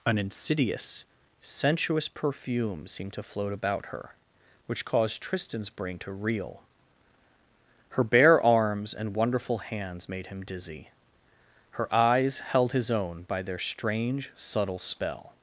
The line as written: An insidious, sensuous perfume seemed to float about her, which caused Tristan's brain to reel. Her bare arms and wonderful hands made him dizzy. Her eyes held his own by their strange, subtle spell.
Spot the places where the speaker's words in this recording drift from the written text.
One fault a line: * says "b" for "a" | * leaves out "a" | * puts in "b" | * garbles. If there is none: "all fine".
all fine